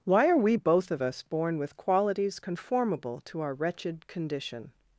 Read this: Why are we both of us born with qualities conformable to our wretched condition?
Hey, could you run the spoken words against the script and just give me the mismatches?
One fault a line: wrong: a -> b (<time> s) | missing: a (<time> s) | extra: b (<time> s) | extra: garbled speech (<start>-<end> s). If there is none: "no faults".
no faults